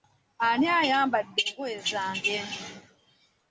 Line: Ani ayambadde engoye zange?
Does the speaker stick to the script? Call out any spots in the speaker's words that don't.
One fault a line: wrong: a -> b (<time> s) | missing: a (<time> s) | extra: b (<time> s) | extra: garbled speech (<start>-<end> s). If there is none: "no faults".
no faults